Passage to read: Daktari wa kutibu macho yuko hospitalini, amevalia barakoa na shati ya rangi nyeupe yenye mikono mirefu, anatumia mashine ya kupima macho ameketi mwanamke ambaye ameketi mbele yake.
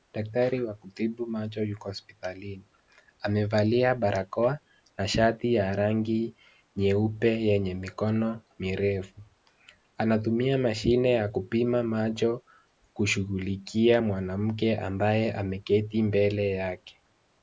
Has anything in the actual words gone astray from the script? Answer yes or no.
yes